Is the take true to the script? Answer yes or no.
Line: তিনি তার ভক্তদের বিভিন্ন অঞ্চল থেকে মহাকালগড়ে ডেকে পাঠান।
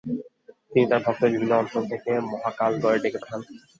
yes